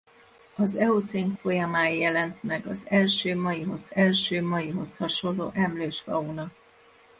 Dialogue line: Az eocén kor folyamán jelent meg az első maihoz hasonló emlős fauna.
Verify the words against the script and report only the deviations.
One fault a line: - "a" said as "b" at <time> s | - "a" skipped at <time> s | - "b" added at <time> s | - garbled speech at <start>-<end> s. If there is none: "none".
- "kor" skipped at 1.3 s
- "első maihoz" added at 3.9 s